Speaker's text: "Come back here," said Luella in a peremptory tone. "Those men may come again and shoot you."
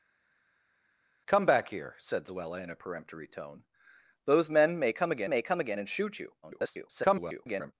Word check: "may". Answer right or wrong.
right